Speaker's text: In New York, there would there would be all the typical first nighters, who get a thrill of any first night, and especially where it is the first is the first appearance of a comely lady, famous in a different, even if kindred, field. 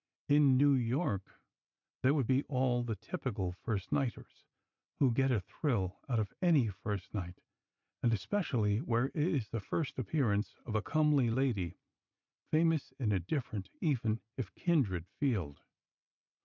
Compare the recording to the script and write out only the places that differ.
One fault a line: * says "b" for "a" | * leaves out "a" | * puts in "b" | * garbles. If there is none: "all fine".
* leaves out "there would"
* puts in "out"
* leaves out "is the first"